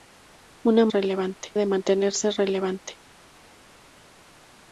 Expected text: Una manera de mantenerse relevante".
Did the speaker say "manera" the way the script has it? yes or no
no